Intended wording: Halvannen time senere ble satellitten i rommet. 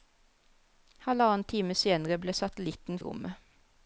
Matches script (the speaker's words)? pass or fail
pass